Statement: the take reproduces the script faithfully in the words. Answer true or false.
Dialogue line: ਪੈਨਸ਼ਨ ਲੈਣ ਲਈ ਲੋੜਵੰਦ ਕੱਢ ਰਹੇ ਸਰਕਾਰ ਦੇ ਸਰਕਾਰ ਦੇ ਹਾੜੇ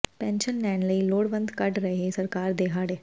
false